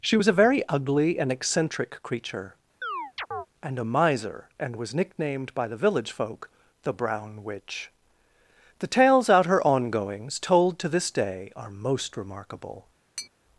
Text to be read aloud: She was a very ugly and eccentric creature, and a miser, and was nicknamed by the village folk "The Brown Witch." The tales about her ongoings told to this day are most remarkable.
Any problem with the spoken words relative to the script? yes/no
yes